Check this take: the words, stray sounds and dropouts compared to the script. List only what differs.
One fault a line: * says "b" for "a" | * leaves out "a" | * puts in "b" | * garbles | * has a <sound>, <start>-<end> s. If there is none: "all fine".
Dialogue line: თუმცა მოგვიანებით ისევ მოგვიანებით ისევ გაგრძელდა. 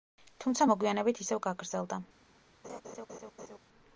* leaves out "მოგვიანებით ისევ"
* has a laugh, 2.6-3.6 s